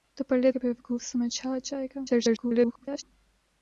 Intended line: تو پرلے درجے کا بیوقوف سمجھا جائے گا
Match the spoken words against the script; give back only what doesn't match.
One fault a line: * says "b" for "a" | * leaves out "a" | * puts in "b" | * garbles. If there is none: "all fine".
* leaves out "درجے"
* garbles